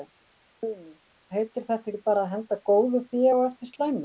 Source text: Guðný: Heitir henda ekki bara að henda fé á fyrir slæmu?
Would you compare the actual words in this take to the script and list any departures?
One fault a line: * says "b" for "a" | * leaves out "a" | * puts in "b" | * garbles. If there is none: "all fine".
* says "þetta" for "henda"
* puts in "góðu"
* says "eftir" for "fyrir"